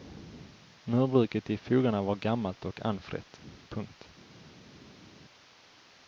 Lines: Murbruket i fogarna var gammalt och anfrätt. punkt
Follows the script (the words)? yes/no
yes